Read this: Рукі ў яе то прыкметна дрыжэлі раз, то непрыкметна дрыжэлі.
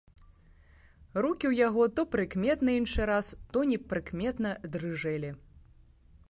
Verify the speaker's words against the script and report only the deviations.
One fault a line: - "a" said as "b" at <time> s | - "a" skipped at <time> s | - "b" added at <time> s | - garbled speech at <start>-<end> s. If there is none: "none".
- "яе" said as "яго" at 1.7 s
- "дрыжэлі" said as "іншы" at 2.8 s